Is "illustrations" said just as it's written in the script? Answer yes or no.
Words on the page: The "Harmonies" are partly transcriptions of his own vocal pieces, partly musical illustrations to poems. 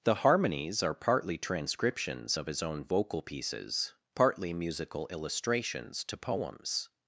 yes